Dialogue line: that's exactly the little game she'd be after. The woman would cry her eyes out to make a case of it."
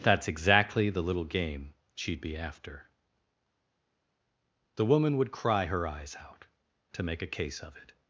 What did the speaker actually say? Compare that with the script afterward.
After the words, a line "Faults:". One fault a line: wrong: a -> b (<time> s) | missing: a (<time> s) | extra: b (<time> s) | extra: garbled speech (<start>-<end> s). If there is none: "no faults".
that's exactly the little game she'd be after. The woman would cry her eyes out to make a case of it."
Faults:
no faults